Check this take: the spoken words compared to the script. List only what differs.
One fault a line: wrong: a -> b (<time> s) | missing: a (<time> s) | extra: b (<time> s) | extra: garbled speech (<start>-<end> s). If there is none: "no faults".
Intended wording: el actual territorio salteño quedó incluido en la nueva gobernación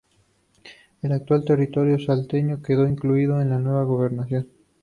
no faults